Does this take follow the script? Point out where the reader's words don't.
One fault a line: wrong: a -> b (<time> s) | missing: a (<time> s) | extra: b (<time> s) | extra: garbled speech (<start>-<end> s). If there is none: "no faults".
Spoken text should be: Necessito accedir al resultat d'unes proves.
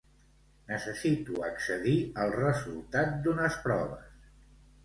no faults